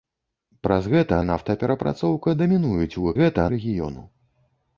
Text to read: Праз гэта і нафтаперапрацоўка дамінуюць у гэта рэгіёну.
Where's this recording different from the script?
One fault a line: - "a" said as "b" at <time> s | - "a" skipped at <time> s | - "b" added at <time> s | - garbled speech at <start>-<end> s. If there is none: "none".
none